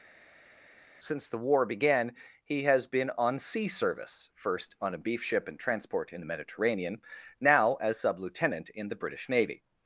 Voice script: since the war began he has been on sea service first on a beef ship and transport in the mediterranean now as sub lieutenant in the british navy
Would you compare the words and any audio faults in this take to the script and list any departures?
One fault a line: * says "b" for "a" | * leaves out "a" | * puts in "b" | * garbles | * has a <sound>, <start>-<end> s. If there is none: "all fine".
all fine